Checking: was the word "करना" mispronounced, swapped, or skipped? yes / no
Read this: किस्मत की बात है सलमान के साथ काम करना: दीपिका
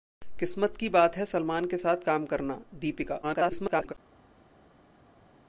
no